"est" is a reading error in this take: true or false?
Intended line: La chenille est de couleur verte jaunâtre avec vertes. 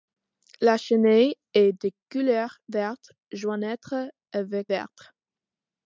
false